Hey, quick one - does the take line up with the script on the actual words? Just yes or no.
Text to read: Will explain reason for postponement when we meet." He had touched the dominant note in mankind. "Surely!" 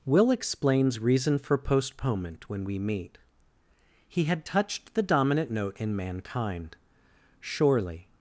no